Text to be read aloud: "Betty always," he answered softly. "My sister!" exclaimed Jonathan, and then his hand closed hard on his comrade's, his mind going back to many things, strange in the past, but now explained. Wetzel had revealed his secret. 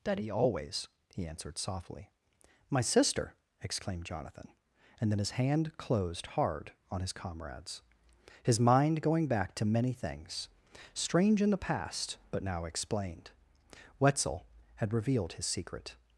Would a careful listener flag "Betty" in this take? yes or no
yes